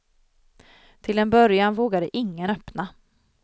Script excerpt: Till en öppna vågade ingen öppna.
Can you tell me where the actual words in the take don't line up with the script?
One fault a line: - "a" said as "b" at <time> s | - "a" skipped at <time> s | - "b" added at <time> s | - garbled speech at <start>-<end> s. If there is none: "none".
- "öppna" said as "början" at 1.3 s